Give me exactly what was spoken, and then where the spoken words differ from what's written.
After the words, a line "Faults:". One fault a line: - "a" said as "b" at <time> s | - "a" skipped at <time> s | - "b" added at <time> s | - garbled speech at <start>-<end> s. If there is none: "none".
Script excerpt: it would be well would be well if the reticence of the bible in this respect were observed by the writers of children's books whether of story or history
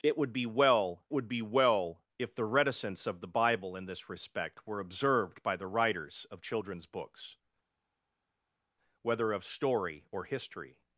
it would be well would be well if the reticence of the bible in this respect were observed by the writers of children's books whether of story or history
Faults:
none